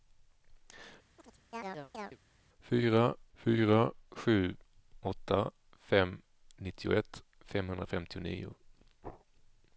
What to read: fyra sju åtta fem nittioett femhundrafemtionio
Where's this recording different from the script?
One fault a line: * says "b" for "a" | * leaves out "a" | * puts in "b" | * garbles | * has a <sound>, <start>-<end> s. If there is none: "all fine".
* has a chirp, 1.2-2.2 s
* puts in "fyra"